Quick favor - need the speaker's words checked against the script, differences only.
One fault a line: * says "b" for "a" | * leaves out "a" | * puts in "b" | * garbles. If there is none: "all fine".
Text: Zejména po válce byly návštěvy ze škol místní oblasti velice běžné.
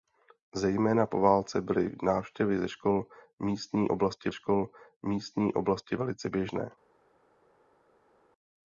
* puts in "škol místní oblasti"